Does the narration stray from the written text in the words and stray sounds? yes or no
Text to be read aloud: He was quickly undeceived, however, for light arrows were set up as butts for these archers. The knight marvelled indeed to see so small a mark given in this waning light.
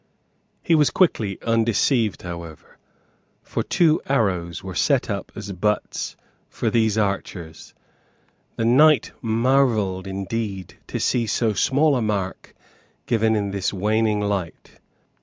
yes